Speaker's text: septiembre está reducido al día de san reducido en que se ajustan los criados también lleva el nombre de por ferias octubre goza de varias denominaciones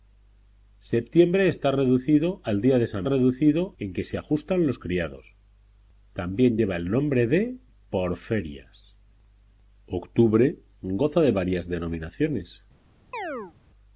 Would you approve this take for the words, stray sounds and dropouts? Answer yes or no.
no